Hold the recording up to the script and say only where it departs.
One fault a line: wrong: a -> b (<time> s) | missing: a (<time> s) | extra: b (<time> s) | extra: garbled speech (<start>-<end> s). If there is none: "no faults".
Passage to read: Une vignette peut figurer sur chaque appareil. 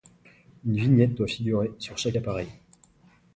wrong: peut -> doit (1.1 s)